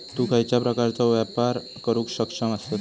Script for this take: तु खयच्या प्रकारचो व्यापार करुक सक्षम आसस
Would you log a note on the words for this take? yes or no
no